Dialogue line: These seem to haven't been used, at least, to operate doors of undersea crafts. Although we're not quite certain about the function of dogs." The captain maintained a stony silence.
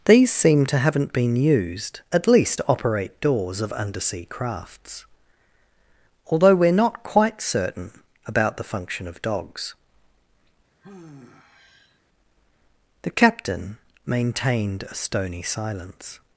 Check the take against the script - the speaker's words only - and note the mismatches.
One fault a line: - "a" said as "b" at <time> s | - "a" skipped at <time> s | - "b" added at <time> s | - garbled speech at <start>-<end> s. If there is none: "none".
none